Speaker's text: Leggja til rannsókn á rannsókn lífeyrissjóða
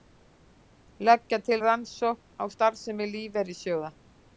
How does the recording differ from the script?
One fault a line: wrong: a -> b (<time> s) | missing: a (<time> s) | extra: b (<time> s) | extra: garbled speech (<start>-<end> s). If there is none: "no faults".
wrong: rannsókn -> starfsemi (2.6 s)